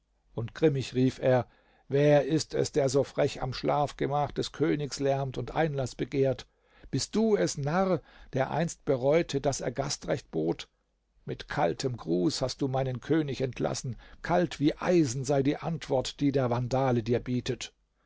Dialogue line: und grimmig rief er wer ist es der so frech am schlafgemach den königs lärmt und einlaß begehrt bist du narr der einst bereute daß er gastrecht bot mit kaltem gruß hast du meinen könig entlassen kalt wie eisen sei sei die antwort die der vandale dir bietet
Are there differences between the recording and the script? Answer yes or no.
yes